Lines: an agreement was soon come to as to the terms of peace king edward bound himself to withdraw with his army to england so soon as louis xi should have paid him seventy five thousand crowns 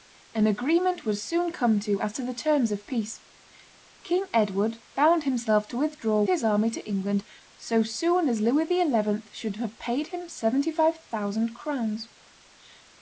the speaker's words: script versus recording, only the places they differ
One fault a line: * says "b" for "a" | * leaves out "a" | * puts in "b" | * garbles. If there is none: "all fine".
* leaves out "with"